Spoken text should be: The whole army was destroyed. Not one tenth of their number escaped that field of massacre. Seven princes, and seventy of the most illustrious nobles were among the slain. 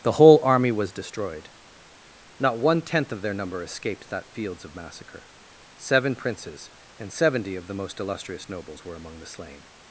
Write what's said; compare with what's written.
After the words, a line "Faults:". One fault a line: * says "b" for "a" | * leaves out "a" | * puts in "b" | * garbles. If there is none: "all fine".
The whole army was destroyed. Not one tenth of their number escaped that fields of massacre. Seven princes, and seventy of the most illustrious nobles were among the slain.
Faults:
* says "fields" for "field"